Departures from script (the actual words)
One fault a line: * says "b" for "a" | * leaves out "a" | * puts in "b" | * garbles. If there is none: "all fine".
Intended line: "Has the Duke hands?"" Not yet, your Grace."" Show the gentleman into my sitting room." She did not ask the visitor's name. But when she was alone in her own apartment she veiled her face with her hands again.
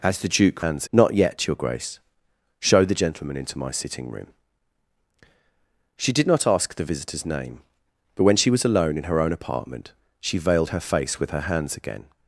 all fine